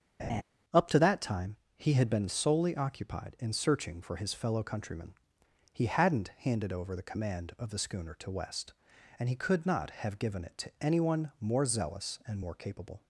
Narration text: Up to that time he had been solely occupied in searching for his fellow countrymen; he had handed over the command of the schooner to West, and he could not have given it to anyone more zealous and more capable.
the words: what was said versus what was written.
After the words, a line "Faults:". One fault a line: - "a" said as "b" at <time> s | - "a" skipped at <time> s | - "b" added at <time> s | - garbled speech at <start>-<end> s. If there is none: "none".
Up to that time he had been solely occupied in searching for his fellow countrymen; he hadn't handed over the command of the schooner to West, and he could not have given it to anyone more zealous and more capable.
Faults:
- "had" said as "hadn't" at 5.9 s